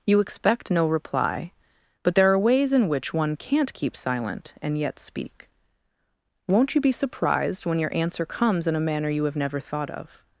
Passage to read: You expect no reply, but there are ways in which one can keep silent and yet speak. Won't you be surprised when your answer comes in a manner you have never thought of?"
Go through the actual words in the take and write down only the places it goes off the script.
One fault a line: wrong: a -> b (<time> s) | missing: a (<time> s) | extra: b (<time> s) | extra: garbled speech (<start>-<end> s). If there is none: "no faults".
wrong: can -> can't (3.4 s)